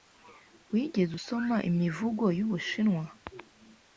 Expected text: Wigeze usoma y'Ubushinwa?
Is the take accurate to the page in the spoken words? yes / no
no